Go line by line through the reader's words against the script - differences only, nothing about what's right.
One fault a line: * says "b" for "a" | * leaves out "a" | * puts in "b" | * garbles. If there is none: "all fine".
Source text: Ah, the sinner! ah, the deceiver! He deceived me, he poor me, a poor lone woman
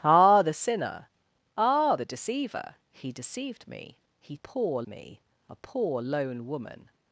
all fine